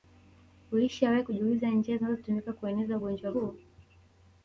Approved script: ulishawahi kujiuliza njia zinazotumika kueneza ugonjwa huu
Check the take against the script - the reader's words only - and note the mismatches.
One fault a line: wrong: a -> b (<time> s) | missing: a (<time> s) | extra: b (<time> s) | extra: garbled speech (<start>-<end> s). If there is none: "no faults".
no faults